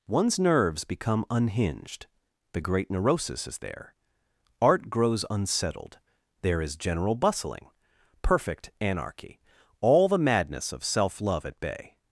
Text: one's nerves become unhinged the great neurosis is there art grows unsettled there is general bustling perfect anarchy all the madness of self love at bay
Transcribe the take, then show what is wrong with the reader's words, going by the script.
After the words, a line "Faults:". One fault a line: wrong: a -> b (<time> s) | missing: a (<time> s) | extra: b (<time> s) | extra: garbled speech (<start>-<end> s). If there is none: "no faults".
one's nerves become unhinged the great neurosis is there art grows unsettled there is general bustling perfect anarchy all the madness of self love at bay
Faults:
no faults